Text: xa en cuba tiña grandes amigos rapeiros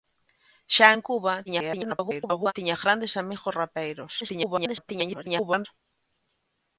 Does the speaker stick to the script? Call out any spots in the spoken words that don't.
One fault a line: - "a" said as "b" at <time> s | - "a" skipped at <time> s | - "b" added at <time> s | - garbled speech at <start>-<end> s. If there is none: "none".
- garbled speech at 1.5-2.5 s
- garbled speech at 4.2-5.7 s